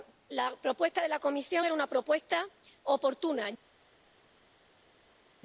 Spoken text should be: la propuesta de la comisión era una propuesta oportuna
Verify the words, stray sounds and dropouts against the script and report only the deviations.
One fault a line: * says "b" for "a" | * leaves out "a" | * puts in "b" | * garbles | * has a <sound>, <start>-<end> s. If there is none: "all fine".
all fine